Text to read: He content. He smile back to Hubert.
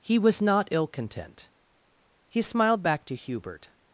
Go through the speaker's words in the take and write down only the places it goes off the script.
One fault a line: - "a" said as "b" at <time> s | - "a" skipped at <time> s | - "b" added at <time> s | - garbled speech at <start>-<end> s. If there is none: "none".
- "was not ill" added at 0.2 s
- "smile" said as "smiled" at 2.4 s